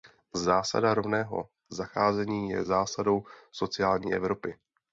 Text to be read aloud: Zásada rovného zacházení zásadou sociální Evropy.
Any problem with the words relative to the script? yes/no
yes